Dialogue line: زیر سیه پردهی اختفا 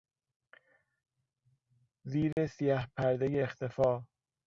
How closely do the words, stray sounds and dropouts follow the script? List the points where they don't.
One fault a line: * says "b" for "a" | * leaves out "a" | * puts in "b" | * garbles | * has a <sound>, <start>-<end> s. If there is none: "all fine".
* has a dropout, 2.3-2.4 s